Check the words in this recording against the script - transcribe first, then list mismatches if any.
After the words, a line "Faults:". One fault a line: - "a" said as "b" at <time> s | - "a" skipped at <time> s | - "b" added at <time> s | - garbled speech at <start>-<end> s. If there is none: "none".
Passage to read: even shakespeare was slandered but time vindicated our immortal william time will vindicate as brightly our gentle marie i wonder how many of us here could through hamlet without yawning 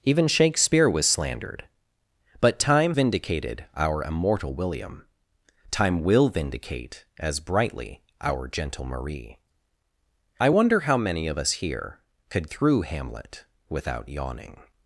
even shakespeare was slandered but time vindicated our immortal william time will vindicate as brightly our gentle marie i wonder how many of us here could through hamlet without yawning
Faults:
none